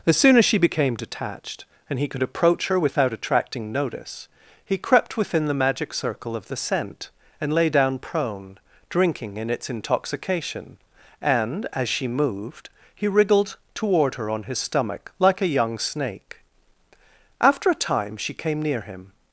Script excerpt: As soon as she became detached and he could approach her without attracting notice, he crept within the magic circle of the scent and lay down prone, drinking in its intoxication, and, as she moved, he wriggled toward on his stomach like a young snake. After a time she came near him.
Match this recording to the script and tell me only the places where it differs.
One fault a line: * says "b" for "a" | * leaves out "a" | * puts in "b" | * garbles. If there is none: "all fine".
* puts in "her"